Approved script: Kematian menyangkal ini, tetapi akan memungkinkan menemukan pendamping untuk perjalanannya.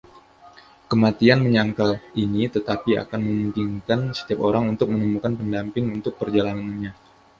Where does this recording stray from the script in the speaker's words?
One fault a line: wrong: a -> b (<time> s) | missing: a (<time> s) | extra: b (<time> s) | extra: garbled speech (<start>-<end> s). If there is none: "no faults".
extra: setiap orang untuk (4.2 s)